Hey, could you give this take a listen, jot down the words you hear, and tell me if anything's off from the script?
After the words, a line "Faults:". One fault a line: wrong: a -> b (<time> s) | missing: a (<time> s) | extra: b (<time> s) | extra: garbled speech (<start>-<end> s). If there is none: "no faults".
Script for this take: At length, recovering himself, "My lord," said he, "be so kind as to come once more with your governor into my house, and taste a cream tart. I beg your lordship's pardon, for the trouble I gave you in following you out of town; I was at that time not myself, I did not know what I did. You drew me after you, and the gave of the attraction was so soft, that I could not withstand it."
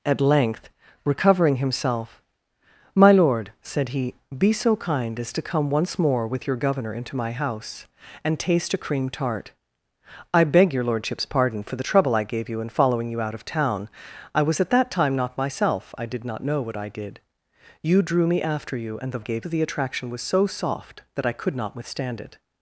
At length, recovering himself, "My lord," said he, "be so kind as to come once more with your governor into my house, and taste a cream tart. I beg your lordship's pardon, for the trouble I gave you in following you out of town; I was at that time not myself, I did not know what I did. You drew me after you, and the gave of the attraction was so soft, that I could not withstand it."
Faults:
no faults